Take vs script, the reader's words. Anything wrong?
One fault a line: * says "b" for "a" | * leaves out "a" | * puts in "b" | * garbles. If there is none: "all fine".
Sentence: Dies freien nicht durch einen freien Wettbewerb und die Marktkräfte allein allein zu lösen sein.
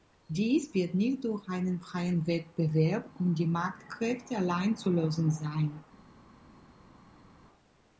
* says "wird" for "freien"
* leaves out "allein"